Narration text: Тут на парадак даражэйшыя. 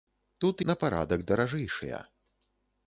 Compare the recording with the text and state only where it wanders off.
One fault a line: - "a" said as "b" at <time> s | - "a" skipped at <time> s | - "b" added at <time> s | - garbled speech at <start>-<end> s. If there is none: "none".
none